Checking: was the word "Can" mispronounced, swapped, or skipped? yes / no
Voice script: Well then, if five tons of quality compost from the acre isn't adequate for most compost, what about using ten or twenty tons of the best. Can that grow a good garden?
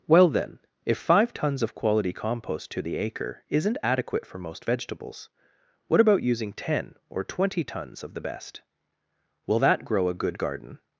yes